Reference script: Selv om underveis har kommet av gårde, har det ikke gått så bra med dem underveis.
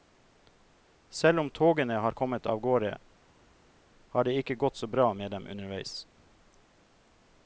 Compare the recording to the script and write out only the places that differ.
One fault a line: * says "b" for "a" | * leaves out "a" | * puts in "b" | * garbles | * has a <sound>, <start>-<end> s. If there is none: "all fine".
* says "togene" for "underveis"